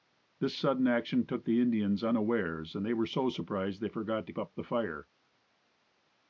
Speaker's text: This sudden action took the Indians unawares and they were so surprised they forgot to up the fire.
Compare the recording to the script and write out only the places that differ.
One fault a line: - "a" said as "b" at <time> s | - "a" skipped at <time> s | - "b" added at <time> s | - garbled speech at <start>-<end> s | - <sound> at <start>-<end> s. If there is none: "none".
none